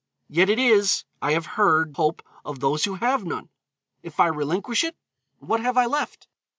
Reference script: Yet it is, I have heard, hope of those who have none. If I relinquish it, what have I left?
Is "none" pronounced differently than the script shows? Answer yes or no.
no